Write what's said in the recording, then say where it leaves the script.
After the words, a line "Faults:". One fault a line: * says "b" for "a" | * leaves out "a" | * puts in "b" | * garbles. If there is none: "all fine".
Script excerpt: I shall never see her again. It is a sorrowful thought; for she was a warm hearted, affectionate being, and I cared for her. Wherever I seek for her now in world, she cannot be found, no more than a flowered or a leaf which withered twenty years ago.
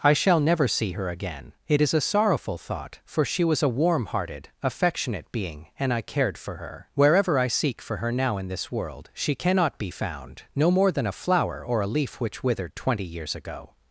I shall never see her again. It is a sorrowful thought; for she was a warm hearted, affectionate being, and I cared for her. Wherever I seek for her now in this world, she cannot be found, no more than a flower or a leaf which withered twenty years ago.
Faults:
* puts in "this"
* says "flower" for "flowered"